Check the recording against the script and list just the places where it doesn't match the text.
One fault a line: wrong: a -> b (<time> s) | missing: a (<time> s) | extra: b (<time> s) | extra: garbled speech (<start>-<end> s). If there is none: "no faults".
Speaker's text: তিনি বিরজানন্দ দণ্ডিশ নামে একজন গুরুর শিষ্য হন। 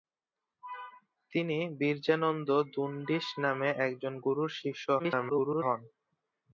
extra: garbled speech (5.0-5.6 s)